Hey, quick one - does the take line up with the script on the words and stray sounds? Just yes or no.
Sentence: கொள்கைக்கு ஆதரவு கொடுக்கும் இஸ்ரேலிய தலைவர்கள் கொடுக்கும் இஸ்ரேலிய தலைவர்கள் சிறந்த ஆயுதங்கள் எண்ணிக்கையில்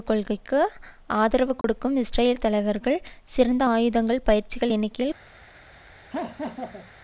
no